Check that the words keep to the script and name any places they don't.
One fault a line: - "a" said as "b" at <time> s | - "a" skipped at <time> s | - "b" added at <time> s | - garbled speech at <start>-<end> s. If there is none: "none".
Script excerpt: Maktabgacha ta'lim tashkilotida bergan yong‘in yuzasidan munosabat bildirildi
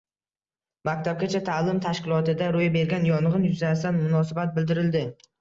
- "ro‘y" added at 2.5 s